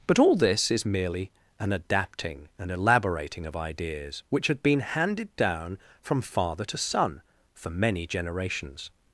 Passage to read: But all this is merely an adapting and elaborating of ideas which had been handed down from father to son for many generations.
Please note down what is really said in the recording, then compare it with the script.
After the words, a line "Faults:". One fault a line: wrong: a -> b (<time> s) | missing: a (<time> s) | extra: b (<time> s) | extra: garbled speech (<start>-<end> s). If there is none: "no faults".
But all this is merely an adapting and elaborating of ideas which had been handed down from father to son for many generations.
Faults:
no faults